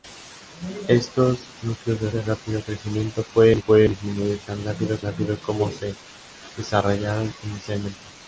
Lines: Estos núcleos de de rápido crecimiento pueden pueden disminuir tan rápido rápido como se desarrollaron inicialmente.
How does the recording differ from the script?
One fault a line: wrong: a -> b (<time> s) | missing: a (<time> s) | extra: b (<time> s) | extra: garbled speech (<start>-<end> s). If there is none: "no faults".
no faults